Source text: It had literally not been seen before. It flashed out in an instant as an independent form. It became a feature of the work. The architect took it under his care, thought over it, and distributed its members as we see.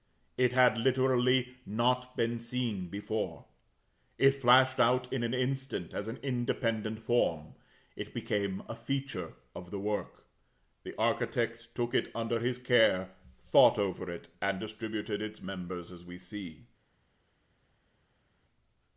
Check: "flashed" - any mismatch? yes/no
no